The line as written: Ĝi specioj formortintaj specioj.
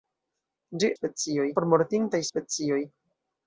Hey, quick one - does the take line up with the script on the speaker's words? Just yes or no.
yes